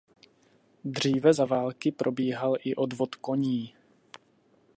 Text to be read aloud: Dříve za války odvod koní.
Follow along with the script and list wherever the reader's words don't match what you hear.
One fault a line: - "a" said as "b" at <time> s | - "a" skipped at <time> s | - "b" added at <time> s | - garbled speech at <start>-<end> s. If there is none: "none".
- "probíhal i" added at 1.9 s